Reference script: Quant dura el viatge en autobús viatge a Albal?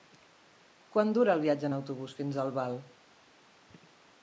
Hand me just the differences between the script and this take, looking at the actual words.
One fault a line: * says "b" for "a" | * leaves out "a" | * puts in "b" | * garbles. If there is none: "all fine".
* says "fins" for "viatge"